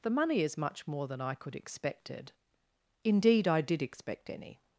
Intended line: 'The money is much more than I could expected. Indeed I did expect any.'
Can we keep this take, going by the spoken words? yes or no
yes